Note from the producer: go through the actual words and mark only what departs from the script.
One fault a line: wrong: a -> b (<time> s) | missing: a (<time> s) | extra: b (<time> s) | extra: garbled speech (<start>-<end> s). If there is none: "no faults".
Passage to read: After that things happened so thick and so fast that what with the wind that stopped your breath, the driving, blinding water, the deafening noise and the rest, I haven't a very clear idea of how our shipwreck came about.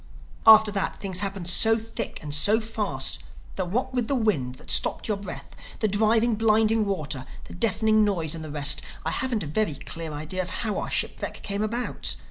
no faults